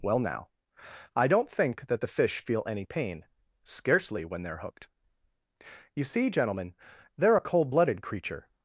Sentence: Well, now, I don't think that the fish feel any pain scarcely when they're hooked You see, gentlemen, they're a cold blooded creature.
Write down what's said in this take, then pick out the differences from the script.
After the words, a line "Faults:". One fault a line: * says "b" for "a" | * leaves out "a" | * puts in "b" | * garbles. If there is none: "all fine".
Well, now, I don't think that the fish feel any pain scarcely when they're hooked You see, gentlemen, they're a cold blooded creature.
Faults:
all fine